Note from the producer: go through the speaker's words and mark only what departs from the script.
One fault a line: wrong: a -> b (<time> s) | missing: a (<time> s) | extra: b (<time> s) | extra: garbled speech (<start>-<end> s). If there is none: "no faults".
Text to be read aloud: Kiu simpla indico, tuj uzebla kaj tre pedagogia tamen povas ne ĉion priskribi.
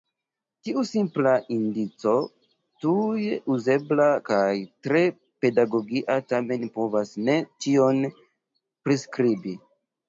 wrong: Kiu -> Tiu (0.7 s)